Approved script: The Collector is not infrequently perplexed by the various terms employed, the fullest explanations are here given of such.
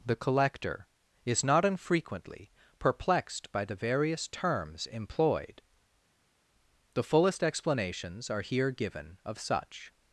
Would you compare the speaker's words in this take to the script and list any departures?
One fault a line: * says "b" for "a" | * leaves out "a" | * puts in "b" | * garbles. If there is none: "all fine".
all fine